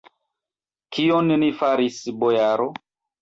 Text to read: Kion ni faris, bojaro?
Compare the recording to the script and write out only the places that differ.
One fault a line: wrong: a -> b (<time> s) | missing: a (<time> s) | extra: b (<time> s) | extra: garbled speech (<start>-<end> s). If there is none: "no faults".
no faults